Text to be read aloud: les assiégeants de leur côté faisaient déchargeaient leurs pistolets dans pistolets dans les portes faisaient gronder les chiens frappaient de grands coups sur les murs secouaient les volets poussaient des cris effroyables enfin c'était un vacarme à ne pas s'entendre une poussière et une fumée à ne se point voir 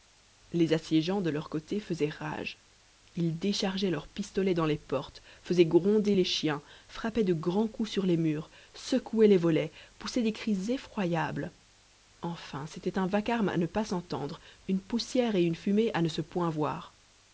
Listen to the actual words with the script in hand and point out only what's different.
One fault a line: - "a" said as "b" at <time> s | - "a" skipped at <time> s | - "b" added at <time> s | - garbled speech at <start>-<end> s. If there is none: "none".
- "rage ils" added at 2.1 s
- "pistolets dans" skipped at 4.7 s